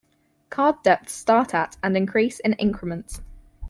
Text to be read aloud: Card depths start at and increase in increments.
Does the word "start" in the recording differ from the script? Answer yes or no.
no